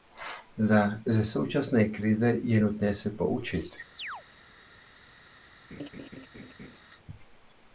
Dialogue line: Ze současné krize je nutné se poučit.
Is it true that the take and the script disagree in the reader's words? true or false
false